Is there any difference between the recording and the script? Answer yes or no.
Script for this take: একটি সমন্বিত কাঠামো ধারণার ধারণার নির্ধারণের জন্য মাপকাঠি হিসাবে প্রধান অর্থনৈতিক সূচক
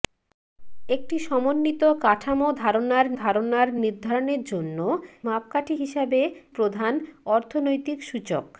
no